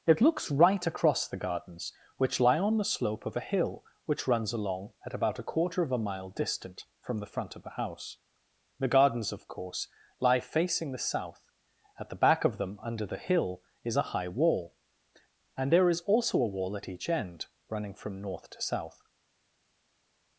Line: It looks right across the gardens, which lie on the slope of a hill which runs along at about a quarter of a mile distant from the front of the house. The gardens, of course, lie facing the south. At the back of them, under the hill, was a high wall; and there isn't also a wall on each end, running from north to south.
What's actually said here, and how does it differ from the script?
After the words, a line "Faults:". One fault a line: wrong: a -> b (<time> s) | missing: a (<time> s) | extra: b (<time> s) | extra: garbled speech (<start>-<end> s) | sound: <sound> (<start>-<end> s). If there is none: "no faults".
It looks right across the gardens, which lie on the slope of a hill which runs along at about a quarter of a mile distant from the front of the house. The gardens, of course, lie facing the south. At the back of them, under the hill, is a high wall; and there is also a wall at each end, running from north to south.
Faults:
wrong: was -> is (13.8 s)
wrong: isn't -> is (15.9 s)
wrong: on -> at (16.8 s)